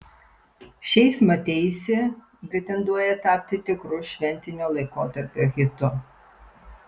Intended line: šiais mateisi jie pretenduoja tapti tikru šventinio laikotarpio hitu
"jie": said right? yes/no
no